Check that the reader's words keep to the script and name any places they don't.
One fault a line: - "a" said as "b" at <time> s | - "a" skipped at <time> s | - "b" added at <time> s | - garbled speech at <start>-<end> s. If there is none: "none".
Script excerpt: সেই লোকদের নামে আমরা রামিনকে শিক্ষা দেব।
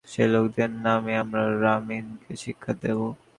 none